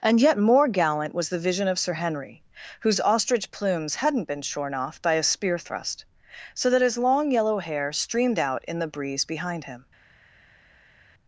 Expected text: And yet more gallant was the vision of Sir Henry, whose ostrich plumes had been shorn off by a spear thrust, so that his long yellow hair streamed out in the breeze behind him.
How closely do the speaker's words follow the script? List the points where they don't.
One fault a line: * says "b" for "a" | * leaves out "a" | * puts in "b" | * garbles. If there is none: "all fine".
* says "hadn't" for "had"